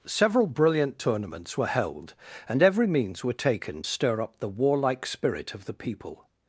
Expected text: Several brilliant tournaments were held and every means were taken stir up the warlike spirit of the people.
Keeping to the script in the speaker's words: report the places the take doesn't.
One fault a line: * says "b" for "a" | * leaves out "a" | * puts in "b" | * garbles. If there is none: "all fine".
all fine